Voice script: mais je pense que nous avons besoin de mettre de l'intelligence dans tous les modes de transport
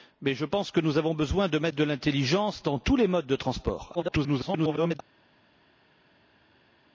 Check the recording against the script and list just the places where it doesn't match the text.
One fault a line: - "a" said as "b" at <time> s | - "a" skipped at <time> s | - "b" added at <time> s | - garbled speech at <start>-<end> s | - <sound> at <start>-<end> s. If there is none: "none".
- garbled speech at 3.9-5.0 s